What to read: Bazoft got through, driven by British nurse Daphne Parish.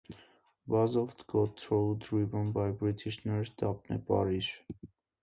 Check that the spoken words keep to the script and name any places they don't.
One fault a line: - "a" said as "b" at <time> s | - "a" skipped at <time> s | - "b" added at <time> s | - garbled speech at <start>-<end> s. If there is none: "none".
none